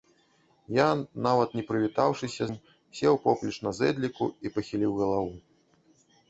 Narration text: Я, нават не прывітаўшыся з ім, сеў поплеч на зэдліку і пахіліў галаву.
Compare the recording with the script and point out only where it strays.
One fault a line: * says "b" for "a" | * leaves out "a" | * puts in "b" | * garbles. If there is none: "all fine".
* leaves out "з"